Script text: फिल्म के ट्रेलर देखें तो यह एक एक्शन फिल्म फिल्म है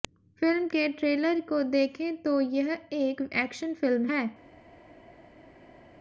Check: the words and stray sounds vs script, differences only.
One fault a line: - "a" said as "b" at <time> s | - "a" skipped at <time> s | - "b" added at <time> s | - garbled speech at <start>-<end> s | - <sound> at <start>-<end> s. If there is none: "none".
- "को" added at 1.4 s
- "फिल्म" skipped at 4.1 s